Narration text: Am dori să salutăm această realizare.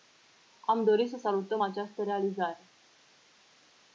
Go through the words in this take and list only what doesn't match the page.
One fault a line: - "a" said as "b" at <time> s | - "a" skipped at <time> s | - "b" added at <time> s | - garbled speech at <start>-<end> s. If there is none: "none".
none